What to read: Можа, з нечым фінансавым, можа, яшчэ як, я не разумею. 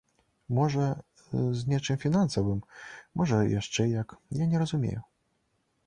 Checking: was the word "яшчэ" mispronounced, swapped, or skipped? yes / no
no